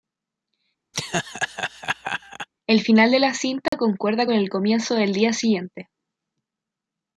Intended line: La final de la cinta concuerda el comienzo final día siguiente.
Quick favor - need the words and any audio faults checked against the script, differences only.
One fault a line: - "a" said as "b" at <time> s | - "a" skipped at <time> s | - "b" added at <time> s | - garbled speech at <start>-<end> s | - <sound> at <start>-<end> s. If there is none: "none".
- laugh at 0.9-2.5 s
- "La" said as "El" at 2.7 s
- dropout at 3.7-3.7 s
- "con" added at 4.2 s
- "final" said as "del" at 4.9 s